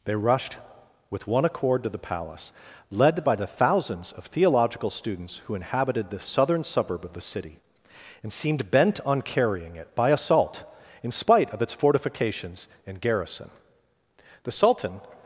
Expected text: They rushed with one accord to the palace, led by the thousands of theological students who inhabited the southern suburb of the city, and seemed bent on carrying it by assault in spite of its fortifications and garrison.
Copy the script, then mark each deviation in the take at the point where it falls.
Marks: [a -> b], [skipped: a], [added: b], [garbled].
They rushed with one accord to the palace, led by the thousands of theological students who inhabited the southern suburb of the city, and seemed bent on carrying it by assault in spite of its fortifications and garrison. [added: The Sultan]